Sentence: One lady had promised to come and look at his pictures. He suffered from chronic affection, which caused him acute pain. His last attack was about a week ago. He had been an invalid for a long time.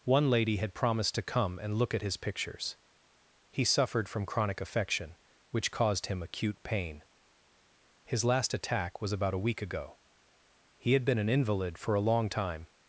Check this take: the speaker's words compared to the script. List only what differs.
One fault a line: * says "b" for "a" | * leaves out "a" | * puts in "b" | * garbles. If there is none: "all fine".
all fine